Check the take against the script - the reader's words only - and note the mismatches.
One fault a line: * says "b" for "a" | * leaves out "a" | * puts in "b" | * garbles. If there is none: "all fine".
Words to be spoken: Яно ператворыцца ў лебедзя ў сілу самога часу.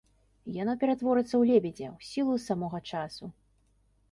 all fine